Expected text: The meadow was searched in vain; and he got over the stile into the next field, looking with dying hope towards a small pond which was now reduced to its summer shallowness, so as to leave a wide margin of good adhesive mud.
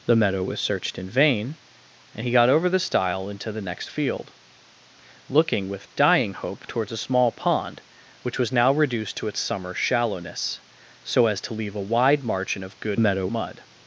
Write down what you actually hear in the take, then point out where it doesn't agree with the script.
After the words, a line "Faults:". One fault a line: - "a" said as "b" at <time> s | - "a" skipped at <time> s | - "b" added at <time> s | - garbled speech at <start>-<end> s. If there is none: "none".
The meadow was searched in vain; and he got over the stile into the next field, looking with dying hope towards a small pond which was now reduced to its summer shallowness, so as to leave a wide margin of good meadow mud.
Faults:
- "adhesive" said as "meadow" at 13.0 s